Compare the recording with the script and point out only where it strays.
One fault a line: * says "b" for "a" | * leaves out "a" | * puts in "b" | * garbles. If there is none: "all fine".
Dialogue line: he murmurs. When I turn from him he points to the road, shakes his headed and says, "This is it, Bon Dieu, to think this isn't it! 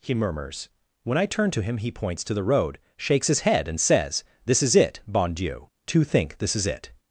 * says "to" for "from"
* says "head" for "headed"
* says "is" for "isn't"